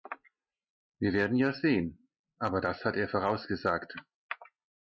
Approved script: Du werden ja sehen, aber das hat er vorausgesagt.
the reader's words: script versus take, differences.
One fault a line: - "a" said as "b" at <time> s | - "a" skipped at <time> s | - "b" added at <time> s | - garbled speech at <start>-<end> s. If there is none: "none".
- "Du" said as "Wir" at 1.0 s